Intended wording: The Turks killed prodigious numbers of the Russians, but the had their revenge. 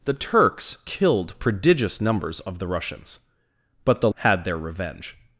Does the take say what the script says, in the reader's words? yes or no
yes